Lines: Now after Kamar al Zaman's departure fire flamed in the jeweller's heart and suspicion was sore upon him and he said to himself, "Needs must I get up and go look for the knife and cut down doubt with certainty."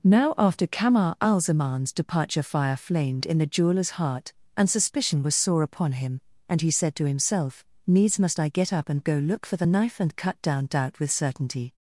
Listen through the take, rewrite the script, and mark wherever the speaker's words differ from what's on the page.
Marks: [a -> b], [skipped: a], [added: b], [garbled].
Now after Kamar al Zaman's departure fire flamed in the jeweller's heart and suspicion was sore upon him and he said to himself, "Needs must I get up and go look for the knife and cut down doubt with certainty."